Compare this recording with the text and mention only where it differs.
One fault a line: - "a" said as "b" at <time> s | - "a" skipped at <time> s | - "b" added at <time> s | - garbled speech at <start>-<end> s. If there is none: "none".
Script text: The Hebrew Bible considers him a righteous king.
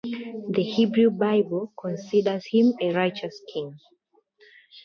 none